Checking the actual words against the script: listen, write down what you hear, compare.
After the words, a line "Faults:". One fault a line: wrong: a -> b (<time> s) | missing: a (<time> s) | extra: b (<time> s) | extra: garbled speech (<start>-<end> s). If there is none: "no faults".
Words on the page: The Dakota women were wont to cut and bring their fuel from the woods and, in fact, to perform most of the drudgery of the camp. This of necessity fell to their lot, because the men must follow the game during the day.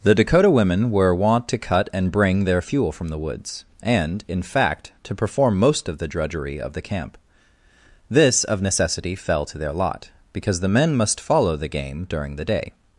The Dakota women were wont to cut and bring their fuel from the woods and, in fact, to perform most of the drudgery of the camp. This of necessity fell to their lot, because the men must follow the game during the day.
Faults:
no faults